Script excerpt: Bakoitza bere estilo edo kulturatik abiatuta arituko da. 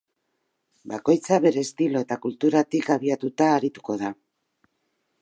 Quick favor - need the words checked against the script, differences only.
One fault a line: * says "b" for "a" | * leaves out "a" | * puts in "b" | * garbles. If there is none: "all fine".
* says "eta" for "edo"